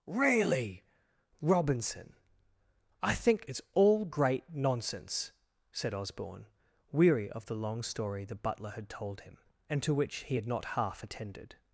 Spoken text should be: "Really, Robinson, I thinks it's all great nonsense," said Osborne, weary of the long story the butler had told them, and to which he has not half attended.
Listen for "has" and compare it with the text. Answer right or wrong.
wrong